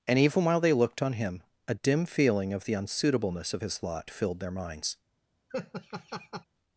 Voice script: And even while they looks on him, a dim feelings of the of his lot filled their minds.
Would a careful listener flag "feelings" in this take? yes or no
yes